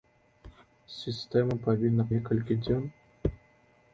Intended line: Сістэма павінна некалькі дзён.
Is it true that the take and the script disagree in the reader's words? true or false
false